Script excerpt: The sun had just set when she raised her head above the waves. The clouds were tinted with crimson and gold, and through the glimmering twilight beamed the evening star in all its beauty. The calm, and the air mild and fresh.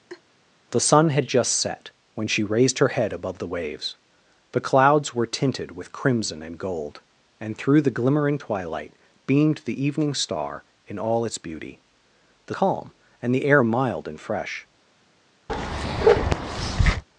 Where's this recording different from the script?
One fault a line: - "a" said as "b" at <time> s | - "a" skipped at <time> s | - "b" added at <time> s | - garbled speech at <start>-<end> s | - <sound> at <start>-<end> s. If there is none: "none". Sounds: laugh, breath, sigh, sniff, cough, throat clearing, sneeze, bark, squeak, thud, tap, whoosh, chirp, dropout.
- laugh at 0.1-0.2 s
- bark at 15.5-17.0 s